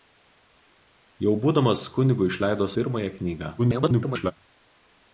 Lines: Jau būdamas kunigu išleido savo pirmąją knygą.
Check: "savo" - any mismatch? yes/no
yes